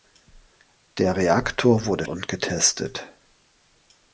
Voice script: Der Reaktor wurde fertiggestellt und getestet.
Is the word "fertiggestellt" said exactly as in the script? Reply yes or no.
no